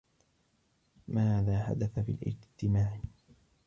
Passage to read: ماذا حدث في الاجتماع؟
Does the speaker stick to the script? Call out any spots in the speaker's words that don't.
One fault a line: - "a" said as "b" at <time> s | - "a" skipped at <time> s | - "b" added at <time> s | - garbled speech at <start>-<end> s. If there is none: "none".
none